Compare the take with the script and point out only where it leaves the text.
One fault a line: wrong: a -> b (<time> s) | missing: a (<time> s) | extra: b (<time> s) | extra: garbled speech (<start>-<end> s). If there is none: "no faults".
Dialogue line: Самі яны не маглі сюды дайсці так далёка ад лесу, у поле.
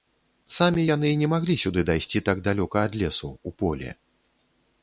no faults